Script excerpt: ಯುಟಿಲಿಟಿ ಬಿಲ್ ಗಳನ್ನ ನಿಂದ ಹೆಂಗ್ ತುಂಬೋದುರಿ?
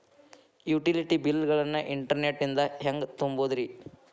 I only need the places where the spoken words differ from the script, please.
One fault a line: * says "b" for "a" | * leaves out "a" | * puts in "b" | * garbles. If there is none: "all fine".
* puts in "ಇಂಟರ್ನೆಟ್"